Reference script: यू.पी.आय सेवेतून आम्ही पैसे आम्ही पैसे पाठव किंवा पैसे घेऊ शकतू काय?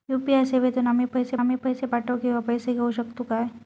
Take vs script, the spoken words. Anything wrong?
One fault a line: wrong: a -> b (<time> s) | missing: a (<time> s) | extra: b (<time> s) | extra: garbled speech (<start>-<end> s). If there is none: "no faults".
no faults